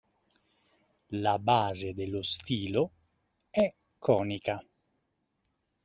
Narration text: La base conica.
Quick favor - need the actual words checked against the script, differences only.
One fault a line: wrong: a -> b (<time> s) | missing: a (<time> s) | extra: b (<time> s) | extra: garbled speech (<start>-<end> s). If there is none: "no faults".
extra: dello stilo è (1.9 s)